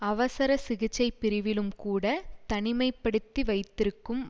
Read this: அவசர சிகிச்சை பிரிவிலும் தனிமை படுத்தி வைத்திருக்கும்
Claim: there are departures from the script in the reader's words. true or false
true